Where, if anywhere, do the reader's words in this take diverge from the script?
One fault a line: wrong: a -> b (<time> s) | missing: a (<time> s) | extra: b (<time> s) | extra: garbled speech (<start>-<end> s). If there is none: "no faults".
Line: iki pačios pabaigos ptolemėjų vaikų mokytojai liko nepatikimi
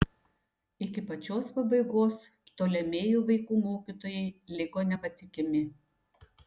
no faults